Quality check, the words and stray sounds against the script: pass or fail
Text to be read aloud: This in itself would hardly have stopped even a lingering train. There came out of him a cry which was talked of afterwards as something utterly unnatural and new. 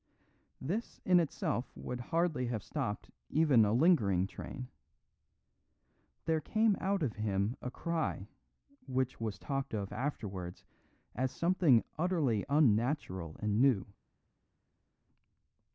pass